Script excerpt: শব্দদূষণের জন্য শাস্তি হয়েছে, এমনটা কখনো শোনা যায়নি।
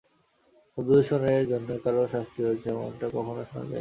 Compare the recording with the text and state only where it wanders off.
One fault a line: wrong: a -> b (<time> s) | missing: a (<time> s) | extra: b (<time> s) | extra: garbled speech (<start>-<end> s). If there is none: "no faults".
extra: কারও (1.8 s)